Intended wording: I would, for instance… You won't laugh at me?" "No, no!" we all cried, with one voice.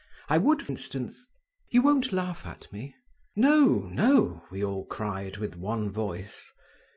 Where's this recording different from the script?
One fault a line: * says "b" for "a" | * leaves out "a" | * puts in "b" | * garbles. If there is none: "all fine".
* leaves out "for"